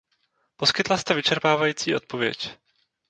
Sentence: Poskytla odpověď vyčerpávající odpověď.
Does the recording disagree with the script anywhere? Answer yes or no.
yes